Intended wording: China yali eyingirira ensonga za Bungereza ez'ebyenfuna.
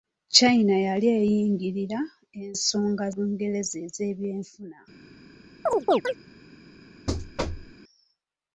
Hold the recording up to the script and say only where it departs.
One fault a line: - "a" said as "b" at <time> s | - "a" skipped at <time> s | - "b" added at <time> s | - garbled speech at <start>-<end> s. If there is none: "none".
- "za" skipped at 3.0 s